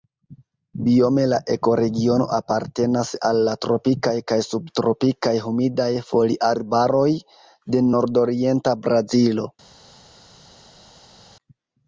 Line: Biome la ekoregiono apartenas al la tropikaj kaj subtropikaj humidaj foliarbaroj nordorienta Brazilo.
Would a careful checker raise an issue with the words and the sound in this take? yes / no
yes